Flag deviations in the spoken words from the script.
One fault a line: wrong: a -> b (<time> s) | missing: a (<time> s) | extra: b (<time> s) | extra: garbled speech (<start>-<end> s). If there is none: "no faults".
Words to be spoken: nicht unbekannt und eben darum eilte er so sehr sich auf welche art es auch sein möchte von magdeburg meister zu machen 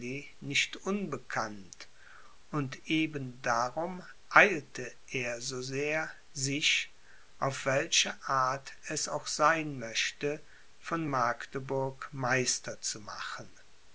no faults